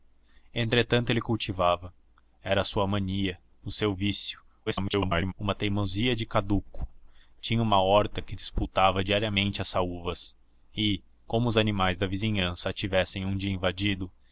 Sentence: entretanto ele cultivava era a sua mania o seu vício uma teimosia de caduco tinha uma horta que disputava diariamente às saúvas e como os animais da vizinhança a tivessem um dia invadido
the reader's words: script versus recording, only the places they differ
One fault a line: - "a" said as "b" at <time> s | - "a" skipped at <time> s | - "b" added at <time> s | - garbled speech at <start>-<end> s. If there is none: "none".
- garbled speech at 4.7-5.3 s